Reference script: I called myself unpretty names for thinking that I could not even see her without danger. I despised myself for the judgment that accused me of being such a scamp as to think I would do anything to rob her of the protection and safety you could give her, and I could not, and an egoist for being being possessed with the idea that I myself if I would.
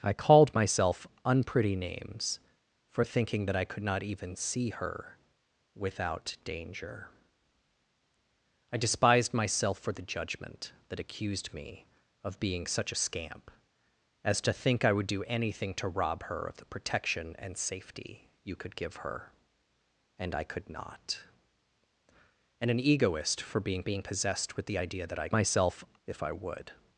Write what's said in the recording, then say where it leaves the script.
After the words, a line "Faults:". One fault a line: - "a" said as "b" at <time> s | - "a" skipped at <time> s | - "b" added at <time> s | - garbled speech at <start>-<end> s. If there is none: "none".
I called myself unpretty names for thinking that I could not even see her without danger. I despised myself for the judgment that accused me of being such a scamp as to think I would do anything to rob her of the protection and safety you could give her, and I could not, and an egoist for being being possessed with the idea that I myself if I would.
Faults:
none